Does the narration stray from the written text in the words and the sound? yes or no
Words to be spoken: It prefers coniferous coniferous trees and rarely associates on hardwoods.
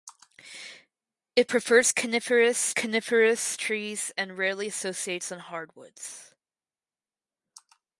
no